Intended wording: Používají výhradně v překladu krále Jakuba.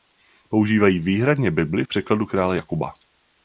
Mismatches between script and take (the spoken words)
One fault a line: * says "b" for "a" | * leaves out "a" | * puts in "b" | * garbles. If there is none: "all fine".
* puts in "bibli"